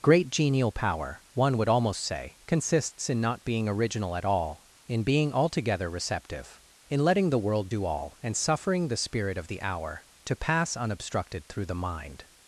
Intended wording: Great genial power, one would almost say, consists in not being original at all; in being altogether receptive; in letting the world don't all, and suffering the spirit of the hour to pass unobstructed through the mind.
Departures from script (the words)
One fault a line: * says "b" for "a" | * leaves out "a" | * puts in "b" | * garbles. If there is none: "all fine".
* says "do" for "don't"